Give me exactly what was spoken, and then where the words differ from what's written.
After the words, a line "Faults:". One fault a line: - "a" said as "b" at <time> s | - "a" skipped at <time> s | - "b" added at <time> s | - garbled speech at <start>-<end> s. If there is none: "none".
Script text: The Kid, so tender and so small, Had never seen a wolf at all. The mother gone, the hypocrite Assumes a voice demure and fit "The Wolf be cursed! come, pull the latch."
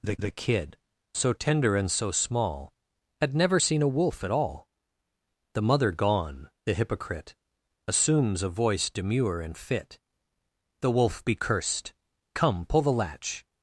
The the Kid, so tender and so small, Had never seen a wolf at all. The mother gone, the hypocrite Assumes a voice demure and fit "The Wolf be cursed! come, pull the latch."
Faults:
- "the" added at 0.2 s